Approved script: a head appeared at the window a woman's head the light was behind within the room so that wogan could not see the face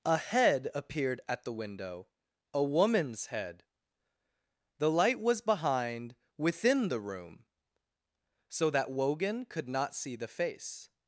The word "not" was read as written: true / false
true